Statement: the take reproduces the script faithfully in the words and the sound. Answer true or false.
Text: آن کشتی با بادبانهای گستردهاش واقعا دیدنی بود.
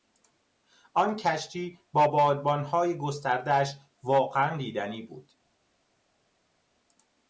true